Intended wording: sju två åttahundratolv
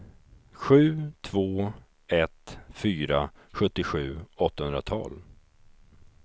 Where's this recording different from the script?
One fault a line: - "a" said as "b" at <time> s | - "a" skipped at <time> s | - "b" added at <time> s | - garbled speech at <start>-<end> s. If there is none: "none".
- "ett fyra sjuttiosju" added at 2.1 s